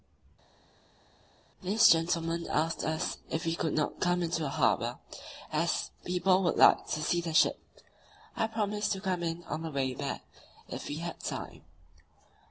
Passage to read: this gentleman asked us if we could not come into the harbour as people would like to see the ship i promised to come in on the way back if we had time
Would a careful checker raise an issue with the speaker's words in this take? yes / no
no